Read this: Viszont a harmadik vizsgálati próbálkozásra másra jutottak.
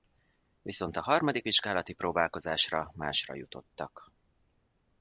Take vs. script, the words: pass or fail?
pass